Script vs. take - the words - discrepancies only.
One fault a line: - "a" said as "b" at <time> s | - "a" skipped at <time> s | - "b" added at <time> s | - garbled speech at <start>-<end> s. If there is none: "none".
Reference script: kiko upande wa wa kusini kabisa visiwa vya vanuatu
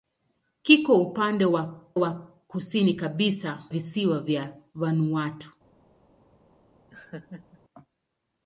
none